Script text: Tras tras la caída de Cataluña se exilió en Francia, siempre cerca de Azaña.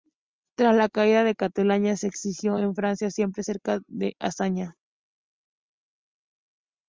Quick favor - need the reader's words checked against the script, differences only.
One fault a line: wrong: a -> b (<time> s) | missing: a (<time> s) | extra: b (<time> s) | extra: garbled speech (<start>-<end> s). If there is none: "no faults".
missing: tras (0.8 s)